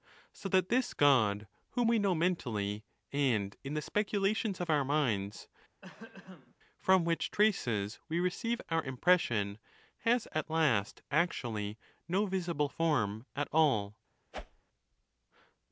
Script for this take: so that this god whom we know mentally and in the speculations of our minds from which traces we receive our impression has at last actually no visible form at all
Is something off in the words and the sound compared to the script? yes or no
yes